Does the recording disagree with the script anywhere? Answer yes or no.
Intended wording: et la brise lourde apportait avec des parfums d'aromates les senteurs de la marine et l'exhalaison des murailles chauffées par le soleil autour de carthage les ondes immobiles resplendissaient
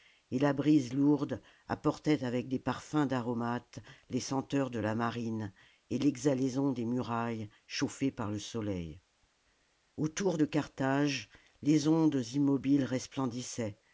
no